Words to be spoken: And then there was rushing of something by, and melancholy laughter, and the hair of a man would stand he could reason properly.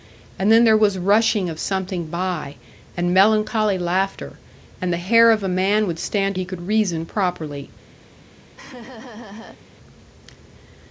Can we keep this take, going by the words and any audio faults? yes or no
no